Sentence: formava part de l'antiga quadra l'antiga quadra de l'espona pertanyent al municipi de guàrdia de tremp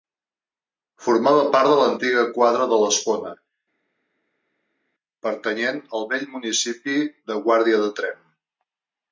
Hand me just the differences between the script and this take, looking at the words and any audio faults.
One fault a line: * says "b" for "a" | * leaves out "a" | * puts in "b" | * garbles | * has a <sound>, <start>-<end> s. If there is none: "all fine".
* leaves out "l'antiga quadra"
* puts in "vell"